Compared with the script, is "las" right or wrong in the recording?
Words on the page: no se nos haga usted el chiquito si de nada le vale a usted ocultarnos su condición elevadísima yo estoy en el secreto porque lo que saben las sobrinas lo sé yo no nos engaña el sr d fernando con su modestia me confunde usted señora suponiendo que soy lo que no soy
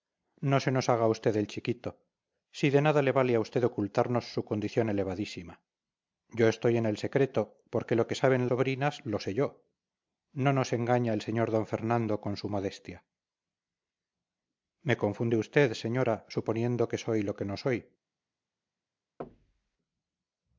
wrong